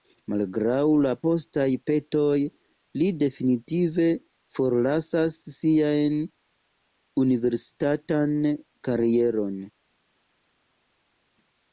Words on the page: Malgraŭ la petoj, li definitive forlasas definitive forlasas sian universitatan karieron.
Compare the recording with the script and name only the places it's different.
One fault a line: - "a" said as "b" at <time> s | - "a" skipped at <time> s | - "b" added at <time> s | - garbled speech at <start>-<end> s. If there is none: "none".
- "postaj" added at 1.3 s
- "definitive forlasas" skipped at 5.4 s